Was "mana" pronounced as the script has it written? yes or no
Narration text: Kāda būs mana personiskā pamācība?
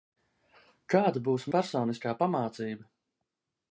no